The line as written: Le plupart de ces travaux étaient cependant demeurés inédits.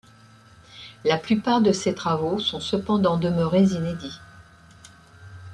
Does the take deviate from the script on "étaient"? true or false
true